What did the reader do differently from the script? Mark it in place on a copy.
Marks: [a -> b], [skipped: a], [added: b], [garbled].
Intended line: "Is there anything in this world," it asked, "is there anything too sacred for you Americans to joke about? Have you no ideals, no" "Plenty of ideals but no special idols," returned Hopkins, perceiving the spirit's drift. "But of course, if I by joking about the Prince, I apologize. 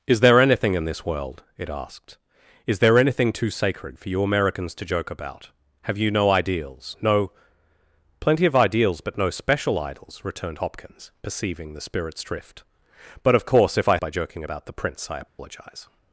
"Is there anything in this world," it asked, "is there anything too sacred for you Americans to joke about? Have you no ideals, no" "Plenty of ideals but no special idols," returned Hopkins, perceiving the spirit's drift. "But of course, if I by joking about the Prince, I apologize.